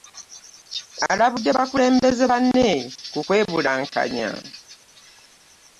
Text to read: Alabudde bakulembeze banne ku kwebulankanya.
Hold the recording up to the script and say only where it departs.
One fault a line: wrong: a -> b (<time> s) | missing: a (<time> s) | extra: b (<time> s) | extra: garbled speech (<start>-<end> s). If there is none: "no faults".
no faults